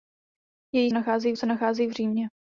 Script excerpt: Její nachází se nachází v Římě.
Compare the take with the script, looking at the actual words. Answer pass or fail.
pass